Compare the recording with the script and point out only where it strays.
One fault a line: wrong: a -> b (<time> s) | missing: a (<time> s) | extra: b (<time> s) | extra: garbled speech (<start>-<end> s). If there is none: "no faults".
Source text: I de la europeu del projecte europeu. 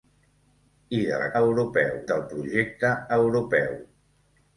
no faults